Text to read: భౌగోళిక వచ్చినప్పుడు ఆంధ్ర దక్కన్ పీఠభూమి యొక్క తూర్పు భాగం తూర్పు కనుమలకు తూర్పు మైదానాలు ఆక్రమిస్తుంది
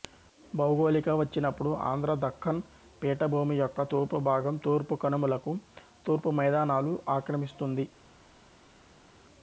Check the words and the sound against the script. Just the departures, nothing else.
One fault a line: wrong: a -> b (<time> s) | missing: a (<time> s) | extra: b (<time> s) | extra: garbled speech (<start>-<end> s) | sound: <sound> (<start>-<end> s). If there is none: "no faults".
no faults